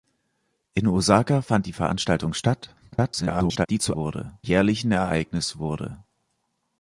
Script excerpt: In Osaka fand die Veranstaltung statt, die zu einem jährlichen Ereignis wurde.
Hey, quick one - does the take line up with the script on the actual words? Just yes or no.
no